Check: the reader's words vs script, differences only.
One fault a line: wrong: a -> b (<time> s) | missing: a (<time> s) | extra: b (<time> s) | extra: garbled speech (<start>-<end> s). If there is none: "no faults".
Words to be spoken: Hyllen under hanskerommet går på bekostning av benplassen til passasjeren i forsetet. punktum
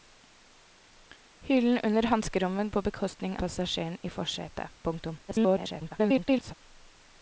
missing: går (2.7 s)
missing: av benplassen til (3.4 s)
extra: garbled speech (5.3-6.5 s)